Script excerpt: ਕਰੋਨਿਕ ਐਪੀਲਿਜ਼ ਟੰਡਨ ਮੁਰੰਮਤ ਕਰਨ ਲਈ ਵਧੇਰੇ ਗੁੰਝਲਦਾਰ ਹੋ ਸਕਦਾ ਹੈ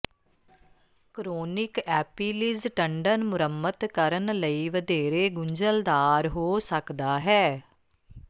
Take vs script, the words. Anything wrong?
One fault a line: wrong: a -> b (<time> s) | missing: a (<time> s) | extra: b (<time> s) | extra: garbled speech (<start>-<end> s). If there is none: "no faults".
no faults